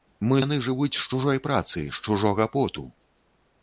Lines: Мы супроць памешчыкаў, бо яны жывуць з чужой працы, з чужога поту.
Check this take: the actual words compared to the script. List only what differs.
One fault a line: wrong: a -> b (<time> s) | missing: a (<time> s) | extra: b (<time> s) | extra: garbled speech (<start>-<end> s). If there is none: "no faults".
missing: супроць памешчыкаў бо (0.4 s)